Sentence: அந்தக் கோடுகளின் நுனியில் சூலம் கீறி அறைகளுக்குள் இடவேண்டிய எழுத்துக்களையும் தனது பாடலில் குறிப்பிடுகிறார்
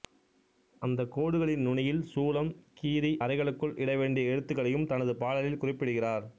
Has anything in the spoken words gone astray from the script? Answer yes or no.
no